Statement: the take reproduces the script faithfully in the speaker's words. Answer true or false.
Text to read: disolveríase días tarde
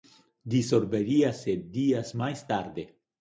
false